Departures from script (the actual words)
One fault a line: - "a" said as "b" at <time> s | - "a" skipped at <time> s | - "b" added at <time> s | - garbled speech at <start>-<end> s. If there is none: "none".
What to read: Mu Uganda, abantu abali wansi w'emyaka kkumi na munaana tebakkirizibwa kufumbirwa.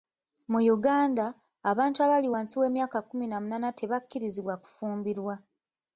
none